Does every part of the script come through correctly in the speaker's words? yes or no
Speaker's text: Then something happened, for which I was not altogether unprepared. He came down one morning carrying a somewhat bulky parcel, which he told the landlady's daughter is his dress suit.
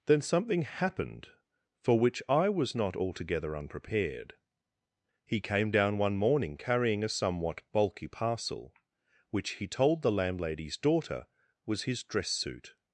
no